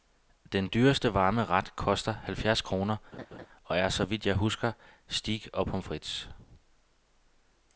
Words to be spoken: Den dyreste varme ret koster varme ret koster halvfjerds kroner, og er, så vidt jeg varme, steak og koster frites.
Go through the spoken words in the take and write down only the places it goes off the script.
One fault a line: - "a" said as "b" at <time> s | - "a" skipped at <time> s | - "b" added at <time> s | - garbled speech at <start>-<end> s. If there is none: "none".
- "varme ret koster" skipped at 2.1 s
- "varme" said as "husker" at 4.3 s
- "koster" said as "pommes" at 5.7 s